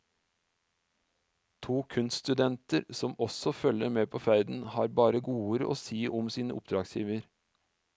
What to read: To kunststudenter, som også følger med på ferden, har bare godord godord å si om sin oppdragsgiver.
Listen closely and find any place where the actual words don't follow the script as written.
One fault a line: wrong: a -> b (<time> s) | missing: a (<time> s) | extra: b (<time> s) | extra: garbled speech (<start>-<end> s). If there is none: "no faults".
missing: godord (5.7 s)